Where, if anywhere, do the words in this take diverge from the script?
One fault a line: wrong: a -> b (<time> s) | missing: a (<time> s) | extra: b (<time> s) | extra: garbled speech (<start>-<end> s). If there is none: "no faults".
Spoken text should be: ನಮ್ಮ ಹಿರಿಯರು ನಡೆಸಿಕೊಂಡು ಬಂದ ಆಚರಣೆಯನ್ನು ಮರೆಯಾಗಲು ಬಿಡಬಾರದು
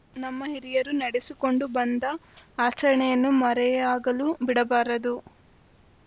no faults